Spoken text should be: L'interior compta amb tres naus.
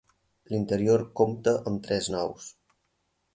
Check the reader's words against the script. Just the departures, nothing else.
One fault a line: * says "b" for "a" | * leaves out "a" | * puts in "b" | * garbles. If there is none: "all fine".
all fine